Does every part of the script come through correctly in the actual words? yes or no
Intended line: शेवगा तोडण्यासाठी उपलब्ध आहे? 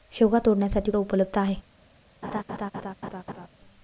yes